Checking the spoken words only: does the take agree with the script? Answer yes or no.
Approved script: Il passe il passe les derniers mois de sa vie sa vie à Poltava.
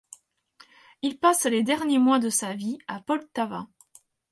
no